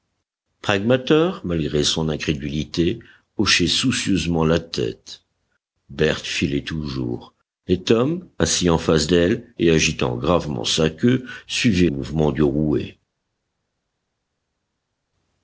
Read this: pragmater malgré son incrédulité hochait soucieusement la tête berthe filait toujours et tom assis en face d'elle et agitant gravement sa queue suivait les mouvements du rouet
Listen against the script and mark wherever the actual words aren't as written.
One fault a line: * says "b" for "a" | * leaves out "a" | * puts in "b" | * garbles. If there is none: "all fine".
* leaves out "les"